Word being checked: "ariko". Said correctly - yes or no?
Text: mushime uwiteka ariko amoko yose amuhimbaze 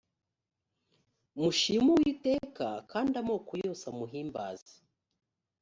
no